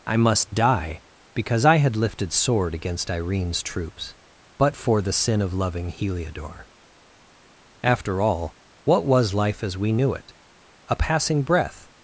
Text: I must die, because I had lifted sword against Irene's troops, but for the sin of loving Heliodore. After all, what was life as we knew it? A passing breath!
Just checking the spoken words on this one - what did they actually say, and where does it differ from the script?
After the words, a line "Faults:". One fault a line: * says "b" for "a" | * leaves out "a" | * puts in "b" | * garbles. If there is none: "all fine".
I must die, because I had lifted sword against Irene's troops, but for the sin of loving Heliodore. After all, what was life as we knew it? A passing breath!
Faults:
all fine